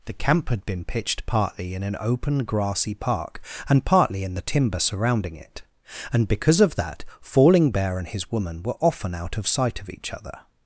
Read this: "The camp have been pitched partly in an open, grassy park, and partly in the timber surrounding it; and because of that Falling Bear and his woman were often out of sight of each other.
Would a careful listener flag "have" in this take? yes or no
yes